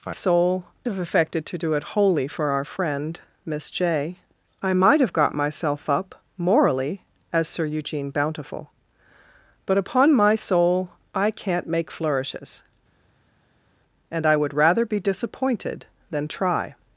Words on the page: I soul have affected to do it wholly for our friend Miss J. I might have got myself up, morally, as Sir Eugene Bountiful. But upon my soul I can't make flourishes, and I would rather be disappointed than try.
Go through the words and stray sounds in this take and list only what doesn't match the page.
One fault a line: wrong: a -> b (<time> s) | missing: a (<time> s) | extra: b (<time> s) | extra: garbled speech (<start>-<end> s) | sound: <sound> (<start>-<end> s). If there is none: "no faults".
no faults